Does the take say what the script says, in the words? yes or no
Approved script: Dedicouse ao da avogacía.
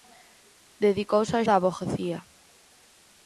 yes